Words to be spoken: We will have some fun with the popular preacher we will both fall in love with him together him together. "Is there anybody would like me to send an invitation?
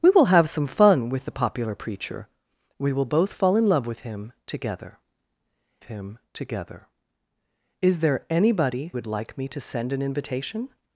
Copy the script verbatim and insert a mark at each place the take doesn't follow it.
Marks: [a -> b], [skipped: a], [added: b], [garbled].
We will have some fun with the popular preacher we will both fall in love with him together him together. "Is there anybody would like me to send an invitation?